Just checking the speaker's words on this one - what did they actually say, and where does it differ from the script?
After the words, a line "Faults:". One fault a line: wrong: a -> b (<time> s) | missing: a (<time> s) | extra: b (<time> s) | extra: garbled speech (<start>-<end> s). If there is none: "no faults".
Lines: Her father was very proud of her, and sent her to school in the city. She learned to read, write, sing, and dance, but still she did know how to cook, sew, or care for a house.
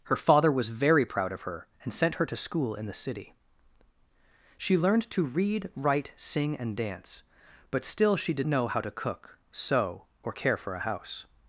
Her father was very proud of her, and sent her to school in the city. She learned to read, write, sing, and dance, but still she did know how to cook, sew, or care for a house.
Faults:
no faults